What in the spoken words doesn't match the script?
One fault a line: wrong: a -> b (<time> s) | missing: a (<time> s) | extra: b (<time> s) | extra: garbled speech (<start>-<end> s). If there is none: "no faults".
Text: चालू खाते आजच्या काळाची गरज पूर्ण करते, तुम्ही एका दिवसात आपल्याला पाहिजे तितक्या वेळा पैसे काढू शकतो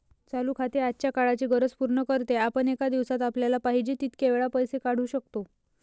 wrong: तुम्ही -> आपण (2.4 s)